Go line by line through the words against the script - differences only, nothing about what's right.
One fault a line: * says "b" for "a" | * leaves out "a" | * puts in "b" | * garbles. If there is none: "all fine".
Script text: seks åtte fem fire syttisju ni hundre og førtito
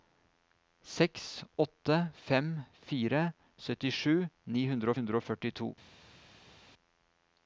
* puts in "hundre"